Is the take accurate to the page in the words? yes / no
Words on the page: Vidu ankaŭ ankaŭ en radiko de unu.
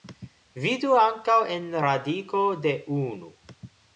no